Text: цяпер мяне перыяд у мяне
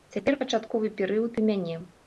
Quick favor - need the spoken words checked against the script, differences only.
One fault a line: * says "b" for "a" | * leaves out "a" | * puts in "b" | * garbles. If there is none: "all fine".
* says "пачатковы" for "мяне"